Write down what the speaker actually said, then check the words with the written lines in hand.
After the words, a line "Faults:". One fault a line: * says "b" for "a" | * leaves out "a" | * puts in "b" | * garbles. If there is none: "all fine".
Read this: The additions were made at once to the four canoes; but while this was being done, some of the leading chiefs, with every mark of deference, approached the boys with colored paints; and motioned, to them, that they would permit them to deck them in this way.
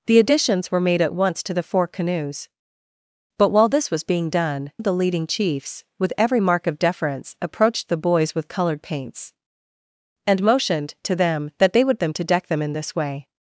The additions were made at once to the four canoes; but while this was being done, of the leading chiefs, with every mark of deference, approached the boys with colored paints; and motioned, to them, that they would them to deck them in this way.
Faults:
* leaves out "some"
* leaves out "permit"